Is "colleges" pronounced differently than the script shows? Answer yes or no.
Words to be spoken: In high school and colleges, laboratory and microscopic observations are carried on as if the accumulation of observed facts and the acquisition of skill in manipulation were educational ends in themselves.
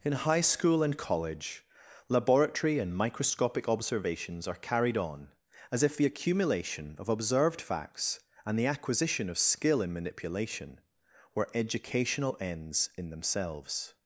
yes